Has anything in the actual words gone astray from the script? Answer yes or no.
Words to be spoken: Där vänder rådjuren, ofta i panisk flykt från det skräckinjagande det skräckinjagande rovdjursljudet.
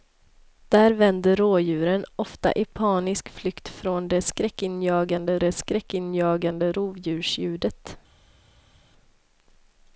no